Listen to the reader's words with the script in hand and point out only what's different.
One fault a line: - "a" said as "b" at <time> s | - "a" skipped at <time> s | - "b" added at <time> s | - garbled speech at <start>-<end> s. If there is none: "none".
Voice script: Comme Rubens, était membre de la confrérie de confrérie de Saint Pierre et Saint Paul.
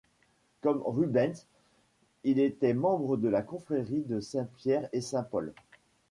- "il" added at 2.2 s
- "confrérie de" skipped at 4.2 s